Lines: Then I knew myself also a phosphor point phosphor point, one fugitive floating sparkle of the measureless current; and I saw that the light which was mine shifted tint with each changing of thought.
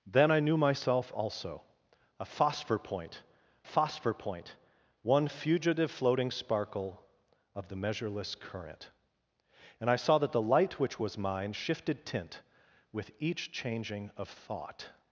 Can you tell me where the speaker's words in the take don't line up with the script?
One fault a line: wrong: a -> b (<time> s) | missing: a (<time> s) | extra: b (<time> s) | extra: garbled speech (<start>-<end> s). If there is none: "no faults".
no faults